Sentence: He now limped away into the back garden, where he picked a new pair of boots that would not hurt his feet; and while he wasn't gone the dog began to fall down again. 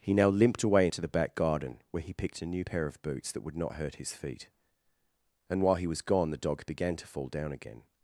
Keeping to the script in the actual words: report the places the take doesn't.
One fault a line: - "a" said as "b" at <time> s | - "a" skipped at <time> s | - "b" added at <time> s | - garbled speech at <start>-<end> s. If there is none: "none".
- "wasn't" said as "was" at 5.9 s